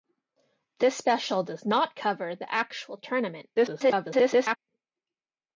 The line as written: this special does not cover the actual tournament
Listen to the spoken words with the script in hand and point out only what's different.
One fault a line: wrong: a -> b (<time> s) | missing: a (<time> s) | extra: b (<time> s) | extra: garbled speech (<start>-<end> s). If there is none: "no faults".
extra: garbled speech (3.6-4.6 s)